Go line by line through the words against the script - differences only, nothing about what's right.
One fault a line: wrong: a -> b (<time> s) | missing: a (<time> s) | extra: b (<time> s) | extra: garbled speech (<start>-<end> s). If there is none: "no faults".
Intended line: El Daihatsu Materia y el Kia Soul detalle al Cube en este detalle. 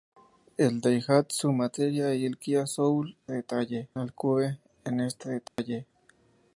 no faults